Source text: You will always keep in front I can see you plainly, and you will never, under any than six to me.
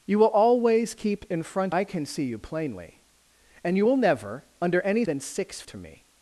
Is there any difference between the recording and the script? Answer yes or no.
no